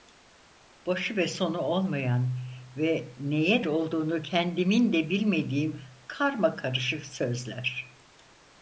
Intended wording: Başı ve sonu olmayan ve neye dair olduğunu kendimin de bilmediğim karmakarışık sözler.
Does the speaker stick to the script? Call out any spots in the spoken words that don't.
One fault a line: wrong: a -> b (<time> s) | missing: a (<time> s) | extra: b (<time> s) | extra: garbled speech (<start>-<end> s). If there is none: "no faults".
missing: dair (3.6 s)